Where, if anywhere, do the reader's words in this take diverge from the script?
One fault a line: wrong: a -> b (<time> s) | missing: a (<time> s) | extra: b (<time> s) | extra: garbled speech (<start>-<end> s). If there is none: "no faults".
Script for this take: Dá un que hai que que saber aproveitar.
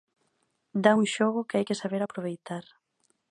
extra: xogo (1.2 s)
missing: que (1.8 s)